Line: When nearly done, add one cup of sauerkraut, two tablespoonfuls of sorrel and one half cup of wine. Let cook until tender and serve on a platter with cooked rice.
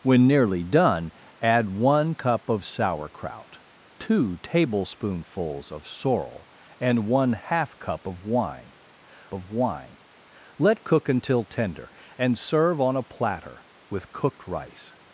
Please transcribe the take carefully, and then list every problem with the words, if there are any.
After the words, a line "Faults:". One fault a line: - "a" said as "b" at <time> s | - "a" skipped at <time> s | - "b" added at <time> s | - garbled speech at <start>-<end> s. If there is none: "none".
When nearly done, add one cup of sauerkraut, two tablespoonfuls of sorrel and one half cup of wine of wine. Let cook until tender and serve on a platter with cooked rice.
Faults:
- "of wine" added at 9.3 s